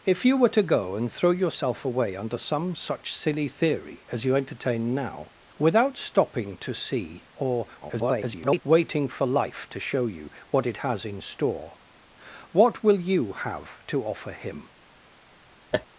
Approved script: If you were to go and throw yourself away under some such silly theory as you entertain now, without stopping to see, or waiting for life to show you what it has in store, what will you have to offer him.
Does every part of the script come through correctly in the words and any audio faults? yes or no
no